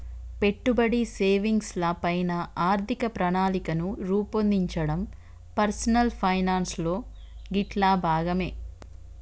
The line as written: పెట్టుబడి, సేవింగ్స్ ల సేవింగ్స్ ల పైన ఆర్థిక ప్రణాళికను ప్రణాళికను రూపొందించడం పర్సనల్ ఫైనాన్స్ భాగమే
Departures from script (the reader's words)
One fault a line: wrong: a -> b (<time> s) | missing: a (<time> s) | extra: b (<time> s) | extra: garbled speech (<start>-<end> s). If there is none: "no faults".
missing: సేవింగ్స్ ల (1.9 s)
missing: ప్రణాళికను (4.0 s)
extra: లో గిట్లా (6.8 s)